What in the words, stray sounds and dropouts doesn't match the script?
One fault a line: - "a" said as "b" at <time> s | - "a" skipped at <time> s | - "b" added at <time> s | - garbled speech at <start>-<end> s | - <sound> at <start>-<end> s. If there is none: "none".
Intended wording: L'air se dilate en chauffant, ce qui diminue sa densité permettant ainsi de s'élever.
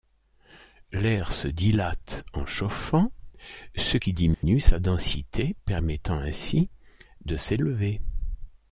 - dropout at 4.3-4.4 s